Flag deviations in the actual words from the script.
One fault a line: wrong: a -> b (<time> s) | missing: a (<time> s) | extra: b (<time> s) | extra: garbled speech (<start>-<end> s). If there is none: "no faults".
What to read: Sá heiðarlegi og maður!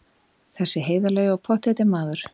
wrong: Sá -> Þessi (0.6 s)
extra: pottþétti (1.5 s)